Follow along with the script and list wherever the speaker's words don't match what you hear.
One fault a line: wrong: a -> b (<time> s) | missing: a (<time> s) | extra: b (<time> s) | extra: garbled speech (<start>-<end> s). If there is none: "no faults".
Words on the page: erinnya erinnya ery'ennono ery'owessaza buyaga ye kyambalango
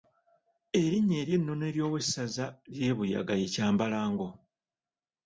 missing: erinnya (1.2 s)
extra: ly'e (2.7 s)